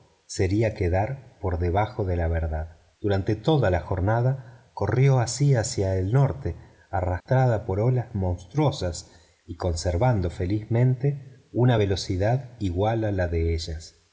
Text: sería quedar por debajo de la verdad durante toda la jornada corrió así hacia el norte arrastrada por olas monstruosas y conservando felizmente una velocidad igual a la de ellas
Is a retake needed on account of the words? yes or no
no